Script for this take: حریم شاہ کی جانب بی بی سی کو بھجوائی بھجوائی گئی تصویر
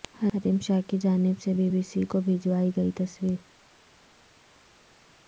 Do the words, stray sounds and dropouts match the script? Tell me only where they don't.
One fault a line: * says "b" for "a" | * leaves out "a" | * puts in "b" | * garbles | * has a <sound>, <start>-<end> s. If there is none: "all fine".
* puts in "سے"
* leaves out "بھجوائی"